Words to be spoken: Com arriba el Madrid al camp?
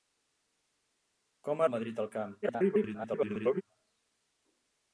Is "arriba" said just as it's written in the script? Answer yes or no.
no